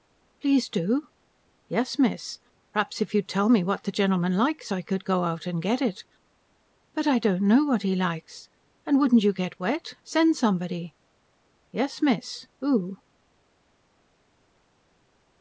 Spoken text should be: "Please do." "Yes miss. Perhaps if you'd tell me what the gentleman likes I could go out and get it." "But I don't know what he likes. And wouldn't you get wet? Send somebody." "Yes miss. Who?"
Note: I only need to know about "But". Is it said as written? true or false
true